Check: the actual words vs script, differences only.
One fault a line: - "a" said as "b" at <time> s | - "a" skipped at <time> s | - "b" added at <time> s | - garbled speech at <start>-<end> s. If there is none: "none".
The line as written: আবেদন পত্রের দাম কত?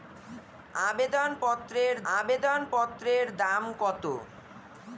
- "আবেদন পত্রের" added at 2.1 s